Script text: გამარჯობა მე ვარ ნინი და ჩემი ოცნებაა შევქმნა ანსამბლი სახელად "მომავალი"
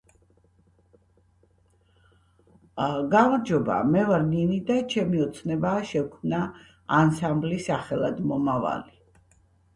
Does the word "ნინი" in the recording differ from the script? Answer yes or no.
no